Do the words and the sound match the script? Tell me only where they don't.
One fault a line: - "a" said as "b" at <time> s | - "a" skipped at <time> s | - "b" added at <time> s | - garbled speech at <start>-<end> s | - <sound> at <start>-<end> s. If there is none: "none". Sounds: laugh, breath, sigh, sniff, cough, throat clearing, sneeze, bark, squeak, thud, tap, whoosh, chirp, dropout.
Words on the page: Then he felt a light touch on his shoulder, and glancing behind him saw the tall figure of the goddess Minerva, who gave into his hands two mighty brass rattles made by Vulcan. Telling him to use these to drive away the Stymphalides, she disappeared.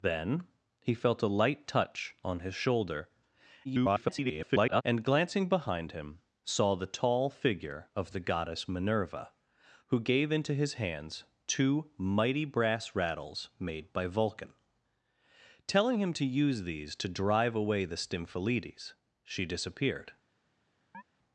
- garbled speech at 3.6-4.8 s
- chirp at 20.9-21.0 s